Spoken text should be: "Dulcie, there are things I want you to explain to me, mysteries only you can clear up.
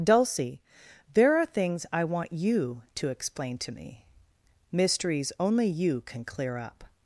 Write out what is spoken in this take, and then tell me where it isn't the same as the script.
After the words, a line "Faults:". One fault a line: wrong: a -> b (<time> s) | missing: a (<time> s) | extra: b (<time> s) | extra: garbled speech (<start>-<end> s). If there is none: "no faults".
"Dulcie, there are things I want you to explain to me, mysteries only you can clear up.
Faults:
no faults